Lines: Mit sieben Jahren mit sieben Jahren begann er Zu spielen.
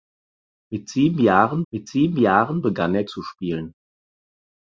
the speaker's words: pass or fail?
pass